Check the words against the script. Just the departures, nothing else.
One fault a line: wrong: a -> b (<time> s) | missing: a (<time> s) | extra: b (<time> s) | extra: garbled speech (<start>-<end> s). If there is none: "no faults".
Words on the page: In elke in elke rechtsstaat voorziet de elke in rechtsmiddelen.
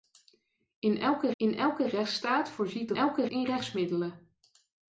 no faults